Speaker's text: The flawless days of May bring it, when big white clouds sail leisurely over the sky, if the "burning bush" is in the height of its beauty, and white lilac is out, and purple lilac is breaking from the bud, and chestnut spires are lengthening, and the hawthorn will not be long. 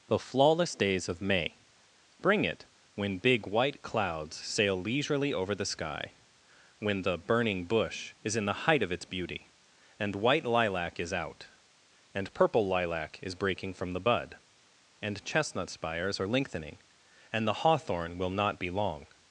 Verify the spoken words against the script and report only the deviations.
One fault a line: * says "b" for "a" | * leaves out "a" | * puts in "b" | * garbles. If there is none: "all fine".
* says "when" for "if"